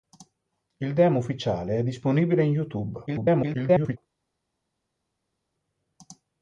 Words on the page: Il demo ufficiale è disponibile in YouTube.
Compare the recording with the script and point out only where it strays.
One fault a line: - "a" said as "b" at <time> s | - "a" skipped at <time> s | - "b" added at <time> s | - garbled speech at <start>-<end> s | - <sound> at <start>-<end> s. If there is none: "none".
- garbled speech at 3.1-4.0 s